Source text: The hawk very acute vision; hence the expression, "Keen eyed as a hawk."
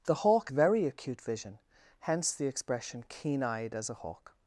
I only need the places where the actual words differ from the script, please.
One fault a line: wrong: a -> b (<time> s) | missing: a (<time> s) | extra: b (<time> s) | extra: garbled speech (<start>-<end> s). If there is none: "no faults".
no faults